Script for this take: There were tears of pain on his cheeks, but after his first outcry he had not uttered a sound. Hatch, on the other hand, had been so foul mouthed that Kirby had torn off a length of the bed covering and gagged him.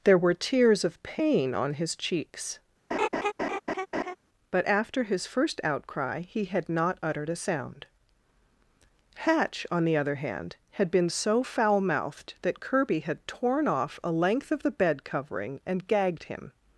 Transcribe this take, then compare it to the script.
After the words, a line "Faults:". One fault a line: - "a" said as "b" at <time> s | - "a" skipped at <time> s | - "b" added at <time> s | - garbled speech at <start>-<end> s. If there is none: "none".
There were tears of pain on his cheeks, but after his first outcry he had not uttered a sound. Hatch, on the other hand, had been so foul mouthed that Kirby had torn off a length of the bed covering and gagged him.
Faults:
none